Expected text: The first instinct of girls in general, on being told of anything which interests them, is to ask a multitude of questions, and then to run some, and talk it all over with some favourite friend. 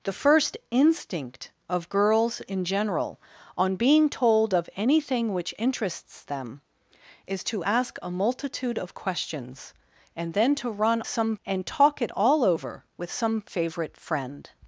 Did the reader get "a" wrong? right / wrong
right